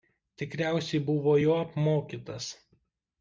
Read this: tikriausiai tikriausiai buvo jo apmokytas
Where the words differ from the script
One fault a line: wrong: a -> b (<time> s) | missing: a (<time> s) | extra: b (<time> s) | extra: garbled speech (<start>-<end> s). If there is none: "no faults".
missing: tikriausiai (1.0 s)